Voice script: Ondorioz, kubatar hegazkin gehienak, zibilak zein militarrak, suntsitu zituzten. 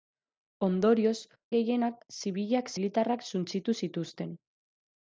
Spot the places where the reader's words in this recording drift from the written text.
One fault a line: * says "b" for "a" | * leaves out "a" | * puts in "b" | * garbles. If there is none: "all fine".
* leaves out "kubatar hegazkin"
* leaves out "zein"